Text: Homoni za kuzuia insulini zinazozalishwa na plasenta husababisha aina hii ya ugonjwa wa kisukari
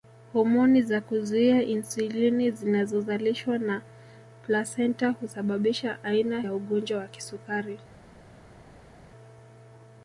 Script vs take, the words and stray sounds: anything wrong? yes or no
yes